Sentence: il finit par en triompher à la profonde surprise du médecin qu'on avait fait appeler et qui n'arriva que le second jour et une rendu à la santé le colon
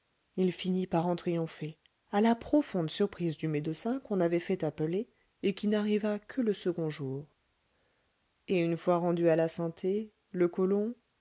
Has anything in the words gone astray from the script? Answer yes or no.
yes